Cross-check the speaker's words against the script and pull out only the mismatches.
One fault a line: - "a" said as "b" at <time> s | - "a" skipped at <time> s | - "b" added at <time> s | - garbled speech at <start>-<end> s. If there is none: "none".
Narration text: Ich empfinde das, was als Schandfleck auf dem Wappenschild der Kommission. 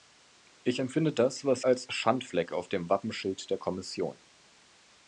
none